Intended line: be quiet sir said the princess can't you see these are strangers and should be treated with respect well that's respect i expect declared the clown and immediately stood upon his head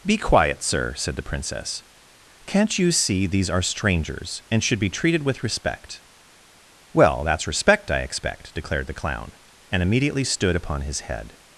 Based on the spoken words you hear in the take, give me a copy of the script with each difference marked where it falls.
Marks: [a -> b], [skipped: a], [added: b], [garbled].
be quiet sir said the princess can't you see these are strangers and should be treated with respect well that's respect i expect declared the clown and immediately stood upon his head